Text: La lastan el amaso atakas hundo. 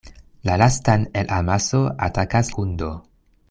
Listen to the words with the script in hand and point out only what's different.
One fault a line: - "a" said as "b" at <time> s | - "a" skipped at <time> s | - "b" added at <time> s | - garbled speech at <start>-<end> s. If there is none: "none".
none